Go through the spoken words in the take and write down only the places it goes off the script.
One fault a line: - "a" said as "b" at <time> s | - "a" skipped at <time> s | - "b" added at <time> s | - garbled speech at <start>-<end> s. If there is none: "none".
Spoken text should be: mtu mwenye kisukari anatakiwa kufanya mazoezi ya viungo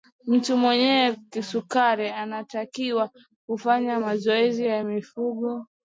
none